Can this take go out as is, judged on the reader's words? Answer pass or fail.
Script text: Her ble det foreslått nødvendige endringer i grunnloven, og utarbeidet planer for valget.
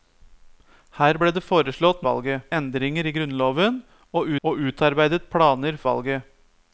fail